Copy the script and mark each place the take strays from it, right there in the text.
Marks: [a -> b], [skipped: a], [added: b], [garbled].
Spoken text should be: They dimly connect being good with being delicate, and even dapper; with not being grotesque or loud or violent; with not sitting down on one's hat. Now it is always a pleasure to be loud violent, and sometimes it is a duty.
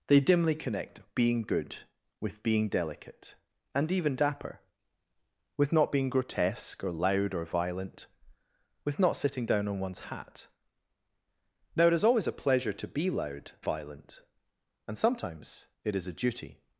They dimly connect being good with being delicate, and even dapper; with not being grotesque or loud or violent; with not sitting down on one's hat. Now it is always a pleasure to be loud violent, and sometimes it is a duty.